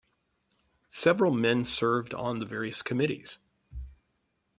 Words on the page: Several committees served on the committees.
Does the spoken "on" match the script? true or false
true